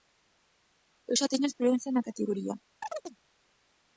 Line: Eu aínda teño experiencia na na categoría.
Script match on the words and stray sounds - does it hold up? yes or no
no